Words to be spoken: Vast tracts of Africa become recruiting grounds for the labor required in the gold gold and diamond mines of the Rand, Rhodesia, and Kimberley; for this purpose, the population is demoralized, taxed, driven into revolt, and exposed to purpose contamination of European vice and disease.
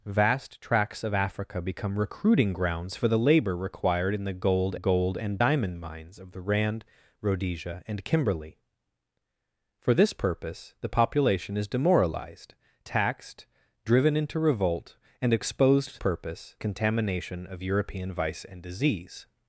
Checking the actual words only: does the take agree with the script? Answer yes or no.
yes